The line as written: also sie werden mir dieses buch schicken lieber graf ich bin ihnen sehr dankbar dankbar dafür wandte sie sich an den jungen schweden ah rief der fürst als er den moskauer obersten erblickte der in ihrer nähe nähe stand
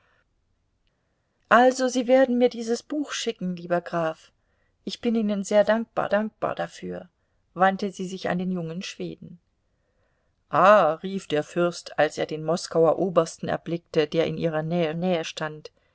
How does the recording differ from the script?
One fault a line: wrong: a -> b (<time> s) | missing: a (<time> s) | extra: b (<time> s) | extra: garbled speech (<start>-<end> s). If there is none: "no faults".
no faults